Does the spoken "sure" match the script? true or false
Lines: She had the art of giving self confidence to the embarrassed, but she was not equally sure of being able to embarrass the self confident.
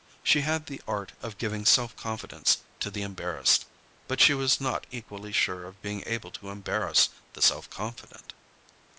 true